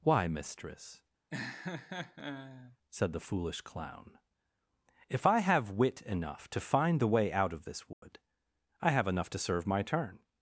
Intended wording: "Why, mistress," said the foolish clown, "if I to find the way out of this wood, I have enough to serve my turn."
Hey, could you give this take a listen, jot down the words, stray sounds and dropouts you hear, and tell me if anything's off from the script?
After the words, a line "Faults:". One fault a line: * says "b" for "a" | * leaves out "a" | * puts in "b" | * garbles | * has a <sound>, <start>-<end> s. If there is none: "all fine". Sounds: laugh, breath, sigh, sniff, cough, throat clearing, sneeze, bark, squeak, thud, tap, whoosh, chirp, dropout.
"Why, mistress," said the foolish clown, "if I have wit enough to find the way out of this wood, I have enough to serve my turn."
Faults:
* has a laugh, 1.3-2.8 s
* puts in "have wit enough"
* has a dropout, 7.9-8.0 s